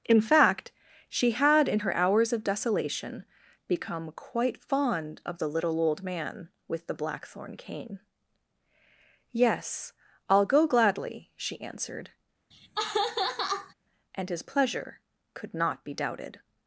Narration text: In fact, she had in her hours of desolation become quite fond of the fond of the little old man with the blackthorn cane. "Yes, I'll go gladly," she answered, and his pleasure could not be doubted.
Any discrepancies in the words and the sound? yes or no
yes